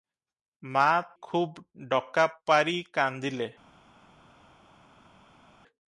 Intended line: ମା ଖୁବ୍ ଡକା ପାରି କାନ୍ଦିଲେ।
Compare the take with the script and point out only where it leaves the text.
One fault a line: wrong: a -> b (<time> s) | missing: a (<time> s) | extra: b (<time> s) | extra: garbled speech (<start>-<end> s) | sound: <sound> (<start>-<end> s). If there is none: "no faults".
no faults